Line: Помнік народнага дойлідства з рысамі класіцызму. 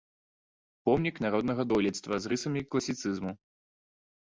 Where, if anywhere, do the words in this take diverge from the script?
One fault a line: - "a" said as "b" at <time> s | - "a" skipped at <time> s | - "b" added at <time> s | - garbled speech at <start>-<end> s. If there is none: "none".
none